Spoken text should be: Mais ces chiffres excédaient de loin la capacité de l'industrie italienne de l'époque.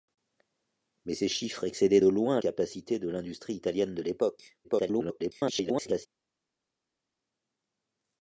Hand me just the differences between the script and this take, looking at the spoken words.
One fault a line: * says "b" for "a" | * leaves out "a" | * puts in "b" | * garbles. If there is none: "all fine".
* leaves out "la"
* garbles